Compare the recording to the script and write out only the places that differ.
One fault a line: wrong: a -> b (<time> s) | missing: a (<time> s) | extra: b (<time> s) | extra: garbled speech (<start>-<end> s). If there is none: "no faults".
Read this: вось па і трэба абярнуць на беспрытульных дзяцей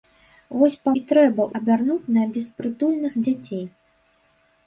no faults